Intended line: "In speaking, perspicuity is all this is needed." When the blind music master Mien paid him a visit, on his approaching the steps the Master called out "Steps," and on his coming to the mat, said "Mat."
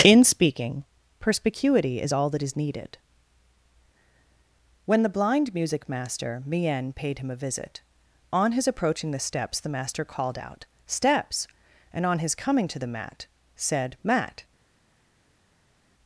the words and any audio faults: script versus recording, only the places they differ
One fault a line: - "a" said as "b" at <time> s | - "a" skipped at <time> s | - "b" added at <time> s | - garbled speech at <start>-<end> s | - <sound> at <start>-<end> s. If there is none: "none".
- "this" said as "that" at 2.3 s